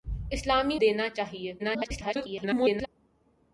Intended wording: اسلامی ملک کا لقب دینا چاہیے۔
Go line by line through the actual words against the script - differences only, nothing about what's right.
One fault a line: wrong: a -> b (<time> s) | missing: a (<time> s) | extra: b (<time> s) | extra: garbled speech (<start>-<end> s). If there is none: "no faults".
missing: ملک کا لقب (0.8 s)
extra: garbled speech (1.6-2.9 s)